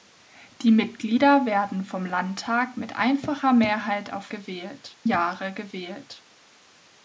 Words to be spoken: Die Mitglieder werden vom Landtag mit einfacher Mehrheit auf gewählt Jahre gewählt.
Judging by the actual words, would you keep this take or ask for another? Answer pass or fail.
pass